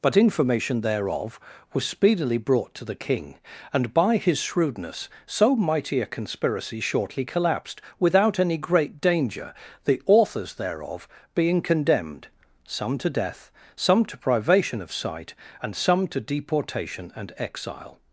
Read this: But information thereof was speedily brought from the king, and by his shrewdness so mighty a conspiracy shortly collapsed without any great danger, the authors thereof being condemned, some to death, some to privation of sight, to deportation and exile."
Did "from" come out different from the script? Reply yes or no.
yes